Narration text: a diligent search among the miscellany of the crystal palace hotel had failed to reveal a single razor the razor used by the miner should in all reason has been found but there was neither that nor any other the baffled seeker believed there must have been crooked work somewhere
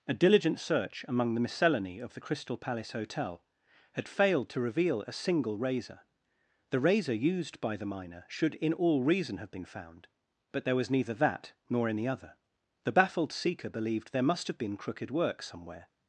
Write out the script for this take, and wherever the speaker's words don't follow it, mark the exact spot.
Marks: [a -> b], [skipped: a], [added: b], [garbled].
a diligent search among the miscellany of the crystal palace hotel had failed to reveal a single razor the razor used by the miner should in all reason [has -> have] been found but there was neither that nor any other the baffled seeker believed there must have been crooked work somewhere